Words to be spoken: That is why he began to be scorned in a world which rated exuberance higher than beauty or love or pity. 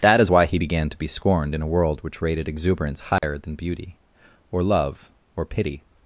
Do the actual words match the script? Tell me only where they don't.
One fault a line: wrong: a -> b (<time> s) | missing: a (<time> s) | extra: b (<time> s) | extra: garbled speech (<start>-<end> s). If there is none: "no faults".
no faults